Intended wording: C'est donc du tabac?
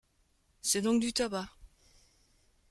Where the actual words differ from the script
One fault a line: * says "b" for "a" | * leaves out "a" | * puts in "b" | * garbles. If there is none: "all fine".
all fine